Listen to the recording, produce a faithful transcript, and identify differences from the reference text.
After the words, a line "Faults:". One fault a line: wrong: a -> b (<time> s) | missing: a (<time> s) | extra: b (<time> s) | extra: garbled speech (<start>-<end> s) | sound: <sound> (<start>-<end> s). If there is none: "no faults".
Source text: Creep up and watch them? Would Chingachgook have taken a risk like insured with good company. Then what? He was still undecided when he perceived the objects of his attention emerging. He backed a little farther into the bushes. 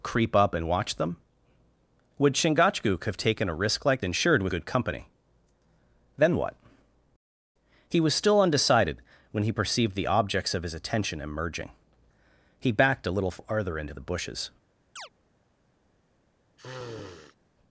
Creep up and watch them? Would Chingachgook have taken a risk like insured with good company. Then what? He was still undecided when he perceived the objects of his attention emerging. He backed a little farther into the bushes.
Faults:
sound: chirp (15.0-15.1 s)
sound: sniff (16.6-17.4 s)